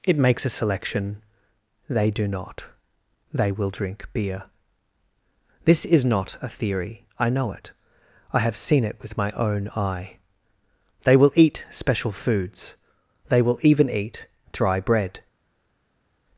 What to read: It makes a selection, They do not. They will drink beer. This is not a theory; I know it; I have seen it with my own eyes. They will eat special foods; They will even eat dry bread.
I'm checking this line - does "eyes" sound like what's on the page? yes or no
no